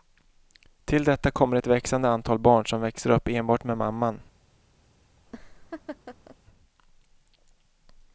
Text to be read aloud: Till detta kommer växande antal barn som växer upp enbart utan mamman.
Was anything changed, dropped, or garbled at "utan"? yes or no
yes